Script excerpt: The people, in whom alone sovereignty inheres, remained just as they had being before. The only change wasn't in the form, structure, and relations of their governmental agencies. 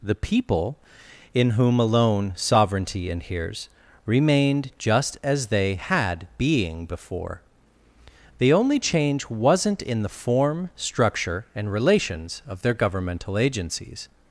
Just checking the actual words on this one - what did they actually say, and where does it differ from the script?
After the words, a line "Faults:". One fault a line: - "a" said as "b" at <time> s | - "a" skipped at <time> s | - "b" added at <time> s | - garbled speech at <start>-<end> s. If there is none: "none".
The people, in whom alone sovereignty inheres, remained just as they had being before. The only change wasn't in the form, structure, and relations of their governmental agencies.
Faults:
none